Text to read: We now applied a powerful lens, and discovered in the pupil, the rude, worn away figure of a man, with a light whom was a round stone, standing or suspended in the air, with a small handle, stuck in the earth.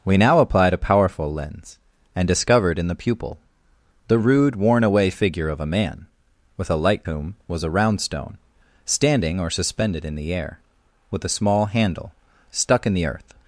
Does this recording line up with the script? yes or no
yes